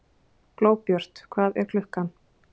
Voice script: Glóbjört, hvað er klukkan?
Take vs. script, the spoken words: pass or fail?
pass